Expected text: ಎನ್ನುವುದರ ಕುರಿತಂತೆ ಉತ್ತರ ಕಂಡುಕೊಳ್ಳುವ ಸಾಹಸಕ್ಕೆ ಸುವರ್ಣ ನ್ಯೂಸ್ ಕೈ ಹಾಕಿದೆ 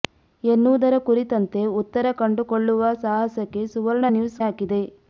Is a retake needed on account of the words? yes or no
yes